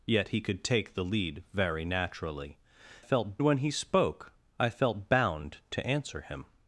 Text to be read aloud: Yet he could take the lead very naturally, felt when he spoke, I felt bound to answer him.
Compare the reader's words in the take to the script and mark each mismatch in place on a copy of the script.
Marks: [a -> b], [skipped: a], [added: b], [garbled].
Yet he could take the lead very naturally, felt when he spoke, I felt bound to answer him.